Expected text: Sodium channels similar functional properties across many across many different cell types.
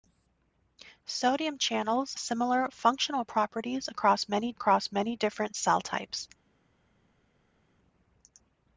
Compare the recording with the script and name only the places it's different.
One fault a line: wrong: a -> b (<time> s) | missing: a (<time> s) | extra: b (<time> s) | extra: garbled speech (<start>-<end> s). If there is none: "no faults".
no faults